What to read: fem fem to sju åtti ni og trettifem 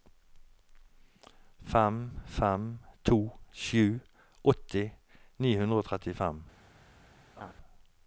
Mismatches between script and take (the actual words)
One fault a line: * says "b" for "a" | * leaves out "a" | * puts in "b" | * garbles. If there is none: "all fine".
* puts in "hundre"